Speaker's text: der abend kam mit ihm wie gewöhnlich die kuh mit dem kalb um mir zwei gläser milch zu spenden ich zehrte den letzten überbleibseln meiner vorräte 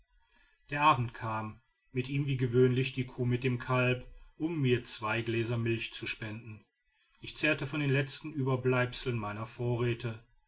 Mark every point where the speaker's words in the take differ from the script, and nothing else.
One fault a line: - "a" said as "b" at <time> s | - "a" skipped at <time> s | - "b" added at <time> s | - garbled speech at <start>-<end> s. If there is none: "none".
- "von" added at 7.7 s